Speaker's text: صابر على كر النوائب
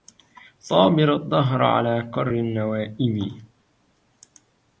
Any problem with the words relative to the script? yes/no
yes